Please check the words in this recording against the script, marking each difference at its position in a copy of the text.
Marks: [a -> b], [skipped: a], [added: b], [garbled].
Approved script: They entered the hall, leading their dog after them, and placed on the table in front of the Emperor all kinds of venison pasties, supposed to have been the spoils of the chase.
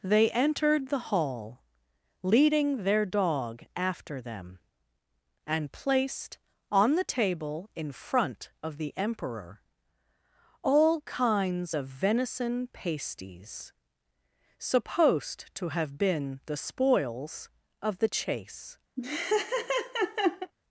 They entered the hall, leading their dog after them, and placed on the table in front of the Emperor all kinds of venison pasties, supposed to have been the spoils of the chase.